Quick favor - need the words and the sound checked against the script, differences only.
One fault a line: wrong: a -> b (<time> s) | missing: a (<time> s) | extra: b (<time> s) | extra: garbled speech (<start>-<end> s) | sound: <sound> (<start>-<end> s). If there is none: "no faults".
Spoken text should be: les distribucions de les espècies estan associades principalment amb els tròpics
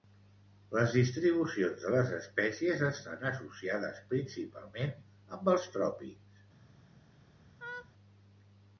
sound: laugh (7.6-7.9 s)